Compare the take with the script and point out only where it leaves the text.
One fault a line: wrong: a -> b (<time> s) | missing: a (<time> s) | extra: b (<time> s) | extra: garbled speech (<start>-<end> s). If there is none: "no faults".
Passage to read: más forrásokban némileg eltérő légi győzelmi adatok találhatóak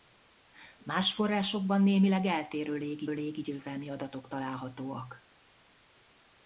extra: légi (3.1 s)